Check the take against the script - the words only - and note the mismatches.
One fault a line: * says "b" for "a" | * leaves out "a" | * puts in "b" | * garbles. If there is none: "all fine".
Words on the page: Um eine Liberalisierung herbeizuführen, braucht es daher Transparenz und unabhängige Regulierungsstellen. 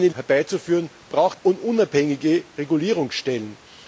* leaves out "Liberalisierung"
* leaves out "es daher Transparenz"